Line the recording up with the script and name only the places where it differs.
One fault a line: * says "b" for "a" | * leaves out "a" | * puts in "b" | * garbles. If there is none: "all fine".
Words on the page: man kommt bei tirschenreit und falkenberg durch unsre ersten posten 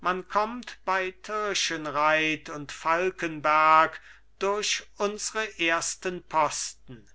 all fine